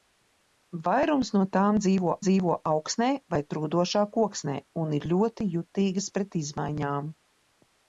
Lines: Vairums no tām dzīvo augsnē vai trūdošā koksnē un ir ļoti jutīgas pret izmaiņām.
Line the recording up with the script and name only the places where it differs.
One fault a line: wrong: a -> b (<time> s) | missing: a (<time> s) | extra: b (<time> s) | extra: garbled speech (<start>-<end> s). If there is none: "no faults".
extra: dzīvo (2.3 s)